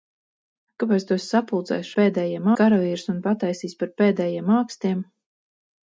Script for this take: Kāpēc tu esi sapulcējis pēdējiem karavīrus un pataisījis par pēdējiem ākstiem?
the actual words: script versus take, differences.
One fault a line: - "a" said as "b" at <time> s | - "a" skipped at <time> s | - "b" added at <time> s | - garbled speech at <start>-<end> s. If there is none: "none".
none